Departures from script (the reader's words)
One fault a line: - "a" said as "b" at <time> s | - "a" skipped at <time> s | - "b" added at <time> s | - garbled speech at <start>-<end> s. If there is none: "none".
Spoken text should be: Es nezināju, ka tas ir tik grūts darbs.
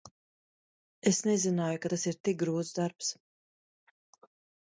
none